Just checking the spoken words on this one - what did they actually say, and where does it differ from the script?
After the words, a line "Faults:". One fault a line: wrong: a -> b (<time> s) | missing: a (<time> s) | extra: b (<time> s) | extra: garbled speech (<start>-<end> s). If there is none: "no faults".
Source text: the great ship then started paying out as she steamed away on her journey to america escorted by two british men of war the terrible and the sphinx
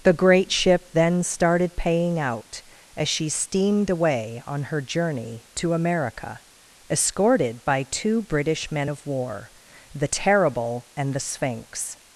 the great ship then started paying out as she steamed away on her journey to america escorted by two british men of war the terrible and the sphinx
Faults:
no faults